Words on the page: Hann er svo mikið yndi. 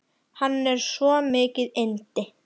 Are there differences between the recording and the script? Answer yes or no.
no